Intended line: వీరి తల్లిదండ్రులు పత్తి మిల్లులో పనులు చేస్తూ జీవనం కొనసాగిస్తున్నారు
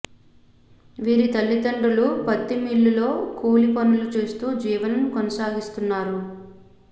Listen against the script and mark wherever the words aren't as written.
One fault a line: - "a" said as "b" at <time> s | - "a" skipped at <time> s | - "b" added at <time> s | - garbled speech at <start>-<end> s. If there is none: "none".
- "కూలి" added at 3.4 s